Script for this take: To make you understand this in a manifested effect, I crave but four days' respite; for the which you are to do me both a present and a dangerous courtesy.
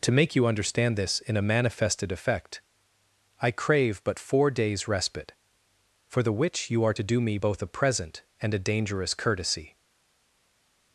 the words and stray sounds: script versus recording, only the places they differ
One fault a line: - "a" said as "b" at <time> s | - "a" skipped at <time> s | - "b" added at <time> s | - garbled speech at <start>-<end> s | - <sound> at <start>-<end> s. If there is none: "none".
none